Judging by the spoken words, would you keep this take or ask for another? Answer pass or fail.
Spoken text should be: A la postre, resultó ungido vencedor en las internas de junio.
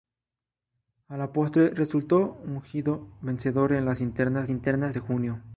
fail